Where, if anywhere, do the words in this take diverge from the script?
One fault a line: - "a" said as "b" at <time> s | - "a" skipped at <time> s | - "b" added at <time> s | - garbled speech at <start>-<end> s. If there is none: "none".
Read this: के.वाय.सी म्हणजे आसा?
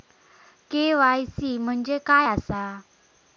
- "काय" added at 2.1 s